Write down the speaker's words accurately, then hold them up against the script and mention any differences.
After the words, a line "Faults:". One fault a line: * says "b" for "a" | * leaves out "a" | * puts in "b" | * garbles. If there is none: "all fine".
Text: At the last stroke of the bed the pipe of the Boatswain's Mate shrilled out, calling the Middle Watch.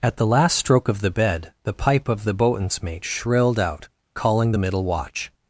At the last stroke of the bed the pipe of the Boatswain's Mate shrilled out, calling the Middle Watch.
Faults:
all fine